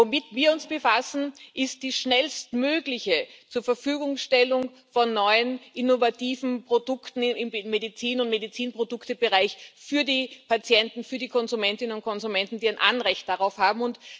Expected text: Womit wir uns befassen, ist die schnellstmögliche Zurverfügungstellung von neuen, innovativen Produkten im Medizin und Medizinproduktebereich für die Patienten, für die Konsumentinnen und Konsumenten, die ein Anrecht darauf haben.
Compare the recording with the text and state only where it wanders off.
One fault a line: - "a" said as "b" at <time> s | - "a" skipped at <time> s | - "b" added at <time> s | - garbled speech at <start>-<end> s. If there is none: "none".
none